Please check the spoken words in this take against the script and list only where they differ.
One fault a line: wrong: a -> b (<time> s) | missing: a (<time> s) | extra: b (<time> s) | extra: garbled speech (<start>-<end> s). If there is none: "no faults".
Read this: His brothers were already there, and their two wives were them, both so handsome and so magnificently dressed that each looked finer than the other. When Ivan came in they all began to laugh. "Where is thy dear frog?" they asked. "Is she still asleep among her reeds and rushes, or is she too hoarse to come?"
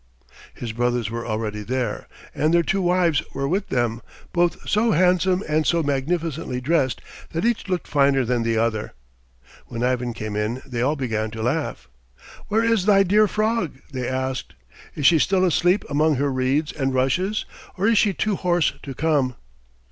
extra: with (3.5 s)